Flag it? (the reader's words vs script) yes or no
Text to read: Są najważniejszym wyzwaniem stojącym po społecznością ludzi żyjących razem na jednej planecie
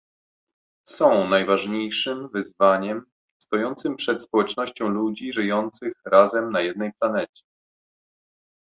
yes